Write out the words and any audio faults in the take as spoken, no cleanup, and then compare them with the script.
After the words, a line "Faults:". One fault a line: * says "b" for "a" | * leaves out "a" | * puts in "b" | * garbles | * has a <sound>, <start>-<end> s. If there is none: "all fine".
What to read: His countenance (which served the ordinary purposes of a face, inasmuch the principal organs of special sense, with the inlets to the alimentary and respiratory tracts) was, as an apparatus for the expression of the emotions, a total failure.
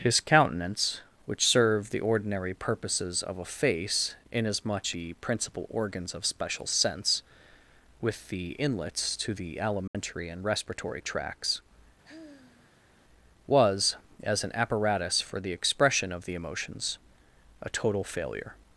His countenance (which served the ordinary purposes of a face, inasmuch the principal organs of special sense, with the inlets to the alimentary and respiratory tracts) was, as an apparatus for the expression of the emotions, a total failure.
Faults:
* has a dropout, 9.9-9.9 s
* has a sigh, 12.0-12.9 s